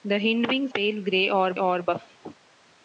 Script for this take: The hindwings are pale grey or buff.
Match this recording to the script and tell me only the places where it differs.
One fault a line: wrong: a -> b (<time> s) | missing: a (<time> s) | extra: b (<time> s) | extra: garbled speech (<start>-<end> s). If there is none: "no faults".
missing: are (0.7 s)
extra: or (1.6 s)